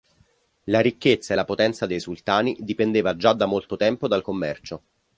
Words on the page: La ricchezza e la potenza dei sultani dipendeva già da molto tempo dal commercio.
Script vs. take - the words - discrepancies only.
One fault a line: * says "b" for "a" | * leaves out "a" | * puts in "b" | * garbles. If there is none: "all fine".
all fine